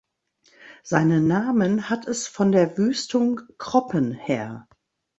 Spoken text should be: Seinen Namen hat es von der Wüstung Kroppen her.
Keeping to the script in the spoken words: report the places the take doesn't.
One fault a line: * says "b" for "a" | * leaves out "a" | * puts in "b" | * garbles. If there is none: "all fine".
all fine